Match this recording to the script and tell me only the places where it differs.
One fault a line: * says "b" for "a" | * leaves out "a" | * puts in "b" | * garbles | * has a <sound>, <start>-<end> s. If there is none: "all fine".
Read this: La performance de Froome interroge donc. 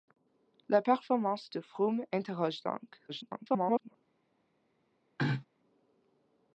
* garbles
* has a throat clearing, 5.2-5.5 s